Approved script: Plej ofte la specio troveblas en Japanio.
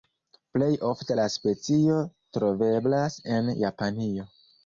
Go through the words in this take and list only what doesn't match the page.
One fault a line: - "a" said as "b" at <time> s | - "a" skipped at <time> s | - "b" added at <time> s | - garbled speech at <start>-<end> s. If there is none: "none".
none